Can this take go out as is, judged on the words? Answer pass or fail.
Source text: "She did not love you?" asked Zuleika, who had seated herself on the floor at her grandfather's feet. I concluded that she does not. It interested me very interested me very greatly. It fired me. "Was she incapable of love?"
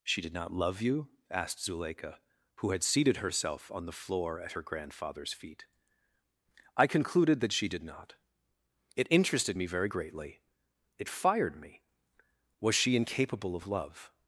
fail